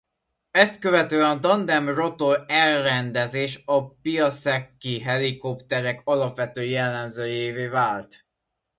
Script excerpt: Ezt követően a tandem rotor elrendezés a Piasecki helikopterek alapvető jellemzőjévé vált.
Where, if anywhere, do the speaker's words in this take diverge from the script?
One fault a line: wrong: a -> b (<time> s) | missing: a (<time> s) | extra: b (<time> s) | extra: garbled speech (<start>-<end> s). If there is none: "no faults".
no faults